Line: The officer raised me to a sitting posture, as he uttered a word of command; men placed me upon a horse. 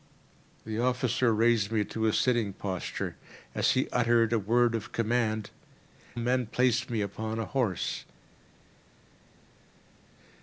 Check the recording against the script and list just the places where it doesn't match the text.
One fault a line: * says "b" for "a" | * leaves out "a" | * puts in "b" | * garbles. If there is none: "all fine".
all fine